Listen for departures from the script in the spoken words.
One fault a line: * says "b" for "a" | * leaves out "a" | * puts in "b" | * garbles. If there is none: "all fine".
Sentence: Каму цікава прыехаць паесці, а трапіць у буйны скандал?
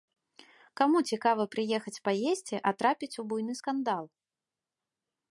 all fine